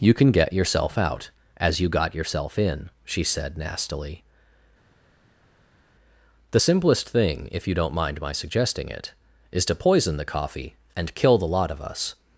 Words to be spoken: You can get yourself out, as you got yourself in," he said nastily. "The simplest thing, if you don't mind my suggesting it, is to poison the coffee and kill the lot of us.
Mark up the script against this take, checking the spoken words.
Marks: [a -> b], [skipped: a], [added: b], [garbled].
You can get yourself out, as you got yourself in," [he -> she] said nastily. "The simplest thing, if you don't mind my suggesting it, is to poison the coffee and kill the lot of us.